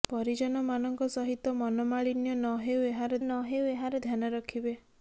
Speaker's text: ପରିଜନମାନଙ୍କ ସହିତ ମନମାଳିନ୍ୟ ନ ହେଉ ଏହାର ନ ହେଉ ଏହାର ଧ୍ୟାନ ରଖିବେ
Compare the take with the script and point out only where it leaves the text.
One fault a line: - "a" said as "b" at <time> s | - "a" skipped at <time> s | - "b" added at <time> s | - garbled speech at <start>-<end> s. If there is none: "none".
none